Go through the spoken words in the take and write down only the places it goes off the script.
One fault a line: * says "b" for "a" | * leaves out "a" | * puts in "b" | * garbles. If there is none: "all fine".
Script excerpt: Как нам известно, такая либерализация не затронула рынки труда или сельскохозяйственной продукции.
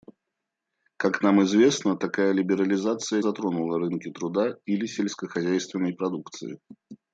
* leaves out "не"